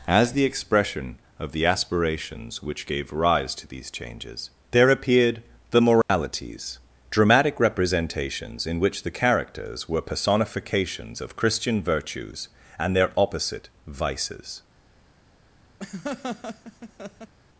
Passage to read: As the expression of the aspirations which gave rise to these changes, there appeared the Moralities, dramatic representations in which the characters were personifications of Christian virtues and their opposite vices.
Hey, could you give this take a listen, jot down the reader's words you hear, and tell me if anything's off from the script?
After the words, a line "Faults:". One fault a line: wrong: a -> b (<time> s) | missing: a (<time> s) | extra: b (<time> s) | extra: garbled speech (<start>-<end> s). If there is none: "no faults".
As the expression of the aspirations which gave rise to these changes, there appeared the Moralities, dramatic representations in which the characters were personifications of Christian virtues and their opposite vices.
Faults:
no faults